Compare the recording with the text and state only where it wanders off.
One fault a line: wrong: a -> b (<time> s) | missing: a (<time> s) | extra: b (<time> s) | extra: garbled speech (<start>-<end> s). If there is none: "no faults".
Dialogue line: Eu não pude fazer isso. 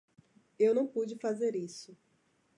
no faults